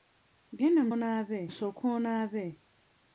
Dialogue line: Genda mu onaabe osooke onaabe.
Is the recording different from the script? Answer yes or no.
no